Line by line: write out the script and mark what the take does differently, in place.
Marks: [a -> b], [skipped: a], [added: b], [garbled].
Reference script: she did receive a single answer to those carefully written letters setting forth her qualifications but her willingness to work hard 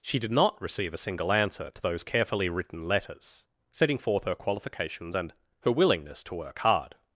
she did [added: not] receive a single answer to those carefully written letters setting forth her qualifications [but -> and] her willingness to work hard